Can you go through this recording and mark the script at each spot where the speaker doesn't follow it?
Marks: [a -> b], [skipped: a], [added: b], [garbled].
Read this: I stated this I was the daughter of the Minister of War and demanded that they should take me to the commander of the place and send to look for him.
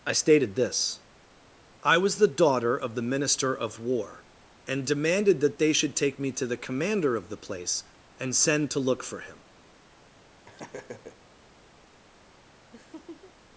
I stated this I was the daughter of the Minister of War and demanded that they should take me to the commander of the place and send to look for him.